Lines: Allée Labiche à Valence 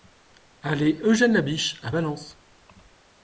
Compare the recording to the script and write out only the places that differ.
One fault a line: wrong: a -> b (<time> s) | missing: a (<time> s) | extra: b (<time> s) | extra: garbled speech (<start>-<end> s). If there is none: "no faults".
extra: Eugène (1.0 s)